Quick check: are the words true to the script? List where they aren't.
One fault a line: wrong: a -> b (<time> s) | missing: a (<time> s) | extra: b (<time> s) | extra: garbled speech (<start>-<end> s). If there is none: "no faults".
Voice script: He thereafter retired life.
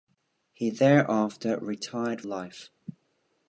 no faults